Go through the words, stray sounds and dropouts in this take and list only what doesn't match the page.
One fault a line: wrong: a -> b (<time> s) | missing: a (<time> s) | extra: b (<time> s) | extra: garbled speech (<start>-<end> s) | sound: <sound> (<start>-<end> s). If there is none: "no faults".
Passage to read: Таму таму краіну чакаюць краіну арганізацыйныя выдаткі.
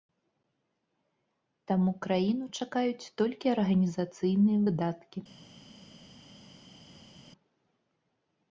missing: таму (1.9 s)
wrong: краіну -> толькі (3.2 s)